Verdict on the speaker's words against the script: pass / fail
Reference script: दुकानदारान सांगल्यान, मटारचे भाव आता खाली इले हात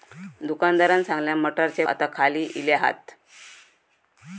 fail